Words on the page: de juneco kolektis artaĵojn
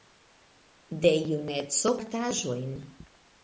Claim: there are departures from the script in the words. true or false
true